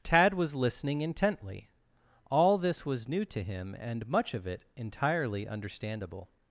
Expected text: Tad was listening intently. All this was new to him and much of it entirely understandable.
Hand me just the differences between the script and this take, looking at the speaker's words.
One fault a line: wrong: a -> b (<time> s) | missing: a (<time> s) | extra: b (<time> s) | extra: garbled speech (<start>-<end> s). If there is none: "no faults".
no faults